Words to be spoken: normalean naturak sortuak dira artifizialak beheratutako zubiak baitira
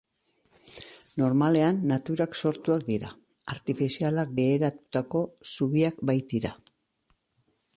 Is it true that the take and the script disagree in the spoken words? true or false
false